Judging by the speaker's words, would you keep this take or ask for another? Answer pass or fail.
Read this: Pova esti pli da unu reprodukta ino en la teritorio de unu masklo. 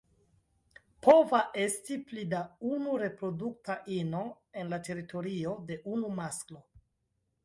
pass